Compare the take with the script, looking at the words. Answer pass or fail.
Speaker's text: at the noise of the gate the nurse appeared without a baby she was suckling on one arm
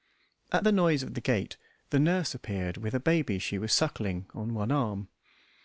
fail